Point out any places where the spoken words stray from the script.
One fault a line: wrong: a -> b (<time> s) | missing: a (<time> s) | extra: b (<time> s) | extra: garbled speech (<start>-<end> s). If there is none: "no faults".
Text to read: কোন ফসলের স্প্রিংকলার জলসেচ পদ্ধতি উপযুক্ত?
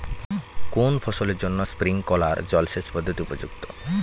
extra: জন্য (1.4 s)